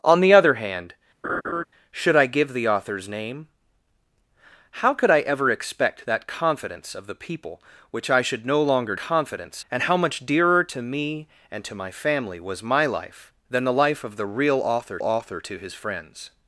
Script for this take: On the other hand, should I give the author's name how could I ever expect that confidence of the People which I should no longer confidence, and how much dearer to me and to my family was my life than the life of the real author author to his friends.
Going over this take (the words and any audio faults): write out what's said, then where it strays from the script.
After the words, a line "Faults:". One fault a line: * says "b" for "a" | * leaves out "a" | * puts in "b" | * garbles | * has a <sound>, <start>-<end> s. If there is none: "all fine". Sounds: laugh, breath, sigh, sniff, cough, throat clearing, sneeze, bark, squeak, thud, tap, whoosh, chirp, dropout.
On the other hand, should I give the author's name how could I ever expect that confidence of the People which I should no longer confidence, and how much dearer to me and to my family was my life than the life of the real author author to his friends.
Faults:
* has a laugh, 1.2-1.6 s